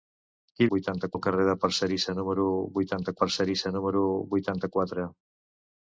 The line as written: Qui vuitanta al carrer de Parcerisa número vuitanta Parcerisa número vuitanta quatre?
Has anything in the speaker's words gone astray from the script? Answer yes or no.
no